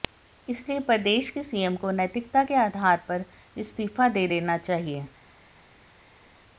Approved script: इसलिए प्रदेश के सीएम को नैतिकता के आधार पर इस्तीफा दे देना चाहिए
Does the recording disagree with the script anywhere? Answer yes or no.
no